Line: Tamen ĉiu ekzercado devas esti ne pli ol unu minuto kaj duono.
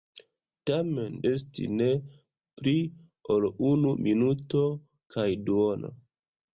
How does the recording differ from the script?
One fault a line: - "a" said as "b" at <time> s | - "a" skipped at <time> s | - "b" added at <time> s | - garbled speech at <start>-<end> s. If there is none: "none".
- "ĉiu ekzercado devas" skipped at 1.2 s